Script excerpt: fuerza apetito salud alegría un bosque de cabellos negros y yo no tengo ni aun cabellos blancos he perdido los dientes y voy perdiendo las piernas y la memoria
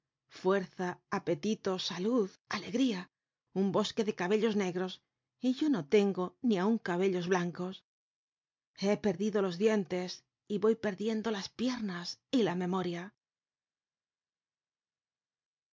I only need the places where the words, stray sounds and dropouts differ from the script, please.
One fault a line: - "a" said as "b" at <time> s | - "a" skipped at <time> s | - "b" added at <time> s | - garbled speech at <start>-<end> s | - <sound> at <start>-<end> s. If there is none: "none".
none